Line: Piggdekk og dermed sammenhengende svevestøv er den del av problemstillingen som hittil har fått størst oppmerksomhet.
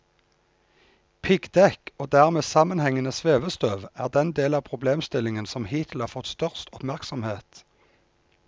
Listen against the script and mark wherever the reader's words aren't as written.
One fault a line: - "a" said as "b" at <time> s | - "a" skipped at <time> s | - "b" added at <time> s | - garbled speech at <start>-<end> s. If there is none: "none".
none